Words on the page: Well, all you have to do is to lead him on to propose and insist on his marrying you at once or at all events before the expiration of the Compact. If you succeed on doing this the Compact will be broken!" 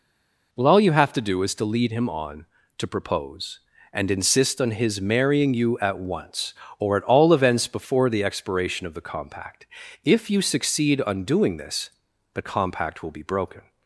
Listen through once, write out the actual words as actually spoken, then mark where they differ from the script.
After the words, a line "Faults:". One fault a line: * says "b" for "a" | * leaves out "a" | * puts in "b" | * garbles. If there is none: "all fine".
Well, all you have to do is to lead him on to propose and insist on his marrying you at once or at all events before the expiration of the Compact. If you succeed on doing this the Compact will be broken!"
Faults:
all fine